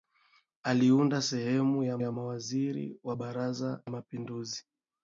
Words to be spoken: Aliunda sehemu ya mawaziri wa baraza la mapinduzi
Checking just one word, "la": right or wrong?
wrong